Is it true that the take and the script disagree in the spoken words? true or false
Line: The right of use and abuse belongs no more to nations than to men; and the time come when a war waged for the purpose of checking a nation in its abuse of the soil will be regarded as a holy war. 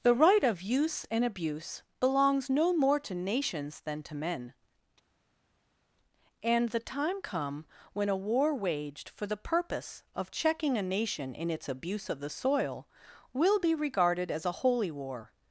false